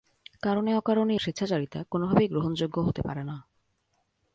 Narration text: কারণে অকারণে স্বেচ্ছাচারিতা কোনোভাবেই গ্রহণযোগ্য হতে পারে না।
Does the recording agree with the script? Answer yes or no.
yes